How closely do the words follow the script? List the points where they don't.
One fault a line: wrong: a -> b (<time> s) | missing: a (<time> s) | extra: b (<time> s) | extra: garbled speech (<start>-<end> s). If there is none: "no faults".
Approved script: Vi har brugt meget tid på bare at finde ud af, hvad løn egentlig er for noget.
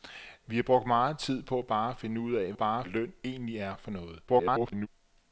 wrong: hvad -> bare (2.5 s)
extra: garbled speech (4.3-4.9 s)